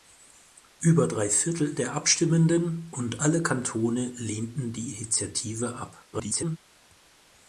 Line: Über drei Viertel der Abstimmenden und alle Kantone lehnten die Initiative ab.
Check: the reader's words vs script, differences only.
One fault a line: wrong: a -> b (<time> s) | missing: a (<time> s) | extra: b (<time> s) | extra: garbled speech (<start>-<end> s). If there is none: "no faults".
extra: garbled speech (6.1-6.6 s)